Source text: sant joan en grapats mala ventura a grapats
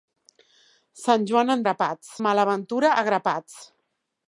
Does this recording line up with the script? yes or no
yes